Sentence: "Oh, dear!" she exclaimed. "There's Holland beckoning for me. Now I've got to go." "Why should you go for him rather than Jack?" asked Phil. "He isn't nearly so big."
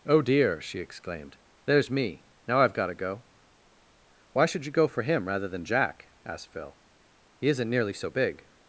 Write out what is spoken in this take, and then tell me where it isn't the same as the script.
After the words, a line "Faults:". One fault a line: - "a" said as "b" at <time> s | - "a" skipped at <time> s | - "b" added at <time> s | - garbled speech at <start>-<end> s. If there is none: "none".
"Oh, dear!" she exclaimed. "There's me. Now I've got to go." "Why should you go for him rather than Jack?" asked Phil. "He isn't nearly so big."
Faults:
- "Holland beckoning for" skipped at 1.9 s